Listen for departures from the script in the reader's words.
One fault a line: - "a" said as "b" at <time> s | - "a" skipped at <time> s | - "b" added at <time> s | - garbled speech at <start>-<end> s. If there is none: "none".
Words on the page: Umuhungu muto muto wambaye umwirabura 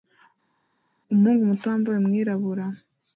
- "muto" skipped at 1.7 s